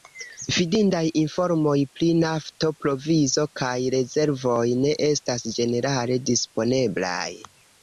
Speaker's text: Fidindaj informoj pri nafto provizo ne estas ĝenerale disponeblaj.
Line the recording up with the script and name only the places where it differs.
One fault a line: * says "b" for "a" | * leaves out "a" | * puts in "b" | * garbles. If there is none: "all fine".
* puts in "kaj rezervoj"